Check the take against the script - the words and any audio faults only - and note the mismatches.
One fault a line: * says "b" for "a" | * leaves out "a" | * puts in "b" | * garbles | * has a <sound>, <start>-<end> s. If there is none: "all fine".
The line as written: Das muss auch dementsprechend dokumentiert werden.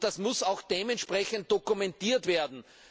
all fine